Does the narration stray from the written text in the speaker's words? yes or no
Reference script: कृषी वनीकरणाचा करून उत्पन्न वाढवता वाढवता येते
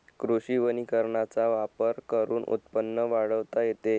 yes